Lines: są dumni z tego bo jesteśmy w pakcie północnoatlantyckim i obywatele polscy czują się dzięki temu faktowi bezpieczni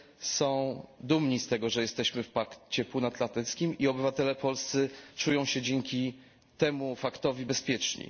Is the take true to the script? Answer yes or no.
no